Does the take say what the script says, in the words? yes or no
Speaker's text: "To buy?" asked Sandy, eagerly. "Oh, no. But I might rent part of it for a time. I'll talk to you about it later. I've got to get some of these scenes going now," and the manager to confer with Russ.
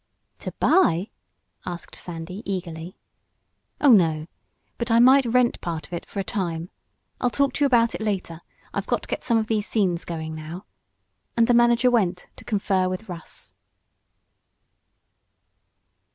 no